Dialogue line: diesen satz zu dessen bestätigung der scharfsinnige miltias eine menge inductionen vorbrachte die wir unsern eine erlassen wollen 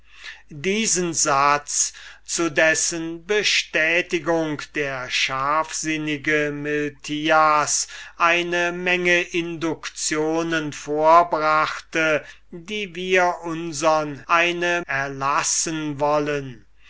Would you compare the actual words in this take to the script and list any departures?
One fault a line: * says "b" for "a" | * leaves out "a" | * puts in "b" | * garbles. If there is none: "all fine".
all fine